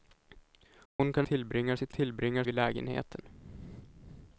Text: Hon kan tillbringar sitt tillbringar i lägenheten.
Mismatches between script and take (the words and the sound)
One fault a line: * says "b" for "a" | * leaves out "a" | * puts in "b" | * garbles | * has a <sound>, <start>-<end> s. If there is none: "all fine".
* has a dropout, 0.9-1.0 s